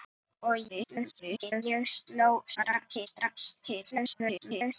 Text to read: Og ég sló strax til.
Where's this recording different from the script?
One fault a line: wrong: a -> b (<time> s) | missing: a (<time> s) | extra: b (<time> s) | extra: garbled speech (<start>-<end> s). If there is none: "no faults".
extra: garbled speech (0.7-1.6 s)
extra: garbled speech (2.5-3.1 s)
extra: garbled speech (3.9-4.7 s)